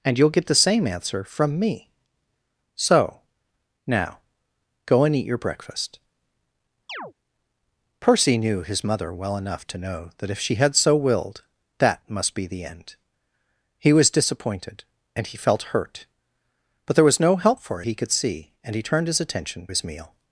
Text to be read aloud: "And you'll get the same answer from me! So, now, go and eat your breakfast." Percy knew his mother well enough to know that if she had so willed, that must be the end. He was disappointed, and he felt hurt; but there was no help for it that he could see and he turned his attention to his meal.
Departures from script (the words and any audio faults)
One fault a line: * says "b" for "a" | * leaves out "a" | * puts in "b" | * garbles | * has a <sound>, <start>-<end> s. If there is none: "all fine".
* has a chirp, 6.9-7.1 s
* leaves out "it that"
* leaves out "to"